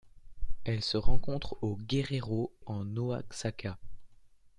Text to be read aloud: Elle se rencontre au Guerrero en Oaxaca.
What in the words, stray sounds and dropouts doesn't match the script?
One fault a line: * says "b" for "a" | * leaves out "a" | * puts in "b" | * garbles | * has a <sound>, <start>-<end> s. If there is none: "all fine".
all fine